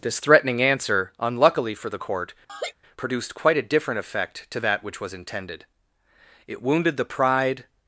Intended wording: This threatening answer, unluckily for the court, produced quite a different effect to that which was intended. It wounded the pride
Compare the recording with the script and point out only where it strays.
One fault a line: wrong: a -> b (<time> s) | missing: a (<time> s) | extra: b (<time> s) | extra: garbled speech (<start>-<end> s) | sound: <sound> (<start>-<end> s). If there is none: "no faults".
sound: laugh (2.5-2.7 s)